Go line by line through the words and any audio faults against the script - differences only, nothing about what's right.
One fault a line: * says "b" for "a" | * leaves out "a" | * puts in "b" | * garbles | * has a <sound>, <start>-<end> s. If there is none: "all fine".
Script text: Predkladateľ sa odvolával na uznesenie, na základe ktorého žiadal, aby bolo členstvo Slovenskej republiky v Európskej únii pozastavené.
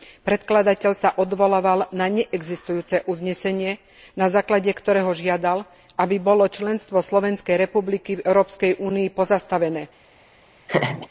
* puts in "neexistujúce"
* has a laugh, 10.7-11.1 s